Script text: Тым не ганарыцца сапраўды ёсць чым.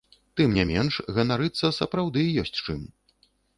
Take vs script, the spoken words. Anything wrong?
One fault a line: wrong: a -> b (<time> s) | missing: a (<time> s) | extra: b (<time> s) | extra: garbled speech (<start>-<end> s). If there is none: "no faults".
extra: менш (0.7 s)